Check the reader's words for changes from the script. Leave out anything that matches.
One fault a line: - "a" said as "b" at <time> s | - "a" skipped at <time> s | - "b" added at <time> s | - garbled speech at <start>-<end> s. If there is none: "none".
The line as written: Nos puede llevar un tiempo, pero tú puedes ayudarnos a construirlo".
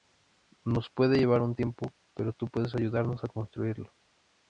none